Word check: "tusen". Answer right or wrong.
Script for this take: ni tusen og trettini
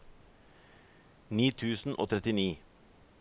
right